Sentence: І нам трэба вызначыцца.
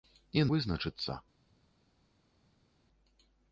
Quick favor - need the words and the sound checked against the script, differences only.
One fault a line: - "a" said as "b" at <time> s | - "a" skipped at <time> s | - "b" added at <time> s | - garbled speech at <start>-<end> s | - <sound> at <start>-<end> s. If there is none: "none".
- "нам трэба" skipped at 0.5 s